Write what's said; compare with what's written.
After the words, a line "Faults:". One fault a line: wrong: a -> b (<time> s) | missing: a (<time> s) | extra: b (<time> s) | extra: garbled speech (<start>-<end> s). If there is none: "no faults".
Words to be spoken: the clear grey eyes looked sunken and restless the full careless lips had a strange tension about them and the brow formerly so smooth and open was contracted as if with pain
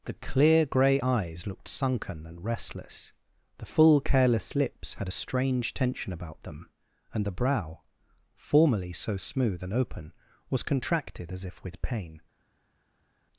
the clear grey eyes looked sunken and restless the full careless lips had a strange tension about them and the brow formerly so smooth and open was contracted as if with pain
Faults:
no faults